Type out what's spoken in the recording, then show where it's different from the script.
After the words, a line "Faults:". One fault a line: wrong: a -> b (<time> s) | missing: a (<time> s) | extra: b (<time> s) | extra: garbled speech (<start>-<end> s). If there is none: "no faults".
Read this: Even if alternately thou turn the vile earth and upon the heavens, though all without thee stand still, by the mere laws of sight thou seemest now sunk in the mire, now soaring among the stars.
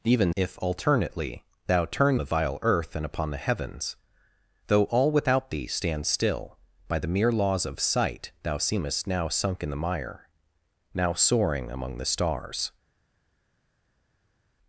Even if alternately thou turn the vile earth and upon the heavens, though all without thee stand still, by the mere laws of sight thou seemest now sunk in the mire, now soaring among the stars.
Faults:
no faults